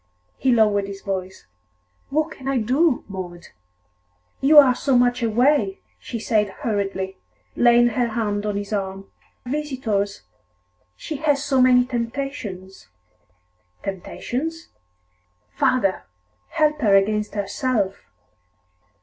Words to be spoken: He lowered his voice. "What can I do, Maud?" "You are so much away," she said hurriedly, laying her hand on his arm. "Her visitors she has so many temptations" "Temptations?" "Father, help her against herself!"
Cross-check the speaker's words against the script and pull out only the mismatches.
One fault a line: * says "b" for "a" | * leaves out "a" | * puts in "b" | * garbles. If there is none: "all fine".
* leaves out "Her"